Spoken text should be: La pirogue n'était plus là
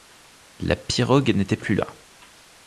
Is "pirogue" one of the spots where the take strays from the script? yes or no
no